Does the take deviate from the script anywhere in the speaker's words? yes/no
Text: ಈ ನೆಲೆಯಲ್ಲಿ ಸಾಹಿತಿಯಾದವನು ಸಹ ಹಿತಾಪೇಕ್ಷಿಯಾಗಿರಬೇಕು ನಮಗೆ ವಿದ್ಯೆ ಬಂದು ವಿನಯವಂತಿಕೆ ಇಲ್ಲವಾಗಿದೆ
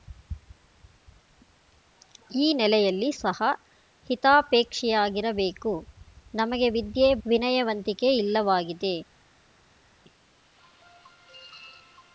yes